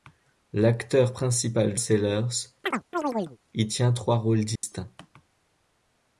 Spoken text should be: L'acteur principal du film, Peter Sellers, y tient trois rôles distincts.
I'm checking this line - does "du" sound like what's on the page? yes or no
no